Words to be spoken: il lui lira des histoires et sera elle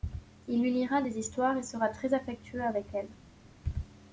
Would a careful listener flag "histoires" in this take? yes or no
no